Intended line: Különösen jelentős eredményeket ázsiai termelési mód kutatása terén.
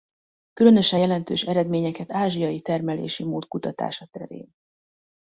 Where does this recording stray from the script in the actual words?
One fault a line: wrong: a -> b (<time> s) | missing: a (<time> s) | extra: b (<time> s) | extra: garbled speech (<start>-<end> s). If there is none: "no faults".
no faults